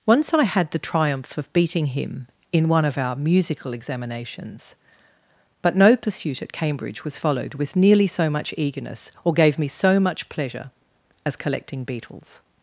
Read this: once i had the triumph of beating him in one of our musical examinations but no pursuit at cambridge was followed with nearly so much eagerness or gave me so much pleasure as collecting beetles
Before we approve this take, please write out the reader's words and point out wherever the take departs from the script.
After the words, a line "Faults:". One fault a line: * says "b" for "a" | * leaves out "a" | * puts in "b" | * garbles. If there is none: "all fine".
once i had the triumph of beating him in one of our musical examinations but no pursuit at cambridge was followed with nearly so much eagerness or gave me so much pleasure as collecting beetles
Faults:
all fine